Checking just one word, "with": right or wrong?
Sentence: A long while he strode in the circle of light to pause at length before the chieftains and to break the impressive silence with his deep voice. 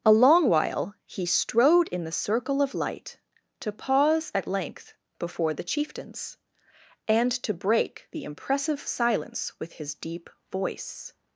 right